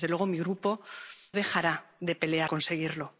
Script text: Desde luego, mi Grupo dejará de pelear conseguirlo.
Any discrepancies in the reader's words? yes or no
no